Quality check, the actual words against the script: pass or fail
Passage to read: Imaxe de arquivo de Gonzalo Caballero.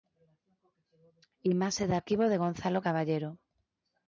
pass